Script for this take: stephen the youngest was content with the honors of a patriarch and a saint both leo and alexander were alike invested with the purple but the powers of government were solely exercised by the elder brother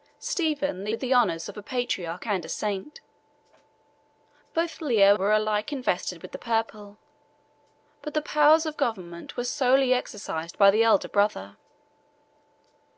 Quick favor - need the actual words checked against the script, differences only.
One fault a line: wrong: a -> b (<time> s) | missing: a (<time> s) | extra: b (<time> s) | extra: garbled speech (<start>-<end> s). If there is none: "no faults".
missing: youngest was content (0.9 s)
missing: and alexander (5.2 s)